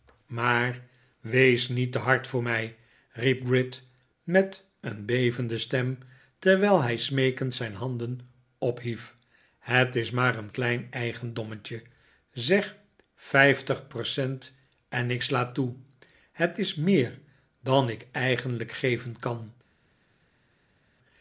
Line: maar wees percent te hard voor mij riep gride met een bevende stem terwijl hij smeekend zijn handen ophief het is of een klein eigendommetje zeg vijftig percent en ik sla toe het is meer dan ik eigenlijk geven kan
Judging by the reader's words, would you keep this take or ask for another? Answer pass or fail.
fail